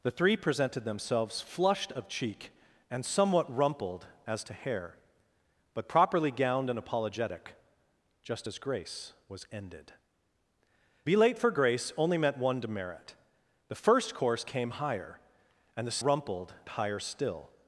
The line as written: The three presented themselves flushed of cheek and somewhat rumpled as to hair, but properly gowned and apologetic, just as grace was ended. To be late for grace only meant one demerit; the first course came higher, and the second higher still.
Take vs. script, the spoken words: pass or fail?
fail